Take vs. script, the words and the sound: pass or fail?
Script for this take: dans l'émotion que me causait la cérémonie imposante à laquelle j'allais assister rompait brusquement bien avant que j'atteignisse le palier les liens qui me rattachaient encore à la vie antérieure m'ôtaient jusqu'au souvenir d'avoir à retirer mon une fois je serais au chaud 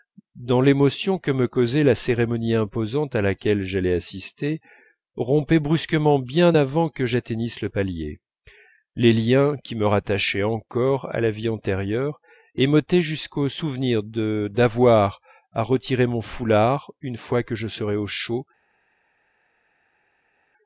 fail